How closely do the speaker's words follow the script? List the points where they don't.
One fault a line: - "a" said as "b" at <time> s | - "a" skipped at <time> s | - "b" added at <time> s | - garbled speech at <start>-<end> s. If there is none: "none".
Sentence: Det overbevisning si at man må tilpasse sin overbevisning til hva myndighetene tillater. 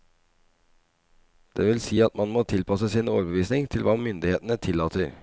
- "overbevisning" said as "vil" at 1.7 s